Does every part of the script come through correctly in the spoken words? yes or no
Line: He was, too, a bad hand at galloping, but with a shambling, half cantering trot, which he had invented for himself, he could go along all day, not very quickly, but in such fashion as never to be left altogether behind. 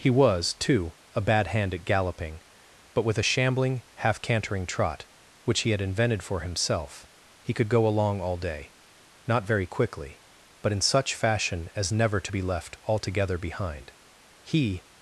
no